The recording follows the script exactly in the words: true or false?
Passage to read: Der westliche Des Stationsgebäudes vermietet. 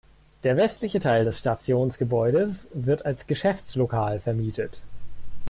false